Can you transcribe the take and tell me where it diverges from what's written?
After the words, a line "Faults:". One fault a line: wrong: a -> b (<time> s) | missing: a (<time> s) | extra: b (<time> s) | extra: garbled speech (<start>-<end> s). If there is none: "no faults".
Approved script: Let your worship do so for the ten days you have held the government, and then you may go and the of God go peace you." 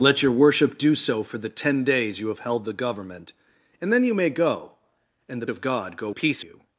Let your worship do so for the ten days you have held the government, and then you may go and the of God go peace you."
Faults:
no faults